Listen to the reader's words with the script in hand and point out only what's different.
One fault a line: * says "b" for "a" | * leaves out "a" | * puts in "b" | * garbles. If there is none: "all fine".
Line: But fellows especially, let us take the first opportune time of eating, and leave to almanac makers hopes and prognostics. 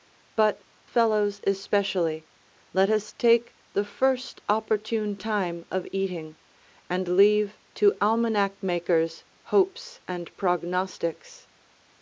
all fine